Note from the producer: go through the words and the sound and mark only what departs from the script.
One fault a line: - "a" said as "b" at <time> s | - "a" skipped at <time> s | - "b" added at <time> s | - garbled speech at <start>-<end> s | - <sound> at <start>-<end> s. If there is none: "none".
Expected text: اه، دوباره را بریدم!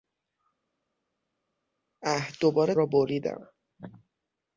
none